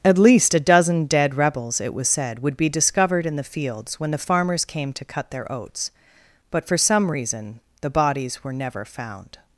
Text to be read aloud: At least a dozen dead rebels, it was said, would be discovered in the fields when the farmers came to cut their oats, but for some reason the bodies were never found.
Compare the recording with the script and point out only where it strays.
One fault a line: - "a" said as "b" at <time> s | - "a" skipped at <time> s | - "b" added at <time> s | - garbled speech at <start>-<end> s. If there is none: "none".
none